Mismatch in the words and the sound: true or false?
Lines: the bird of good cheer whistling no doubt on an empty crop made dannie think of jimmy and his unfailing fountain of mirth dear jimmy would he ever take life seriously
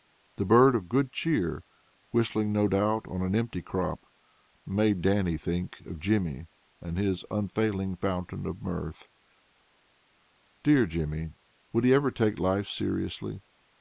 false